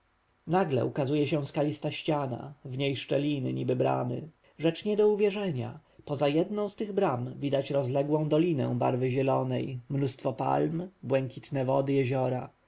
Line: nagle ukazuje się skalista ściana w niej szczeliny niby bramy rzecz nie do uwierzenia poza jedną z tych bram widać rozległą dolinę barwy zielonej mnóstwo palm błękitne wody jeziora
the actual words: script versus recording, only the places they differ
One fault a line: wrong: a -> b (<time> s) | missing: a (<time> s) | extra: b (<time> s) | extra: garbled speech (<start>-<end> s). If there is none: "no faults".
no faults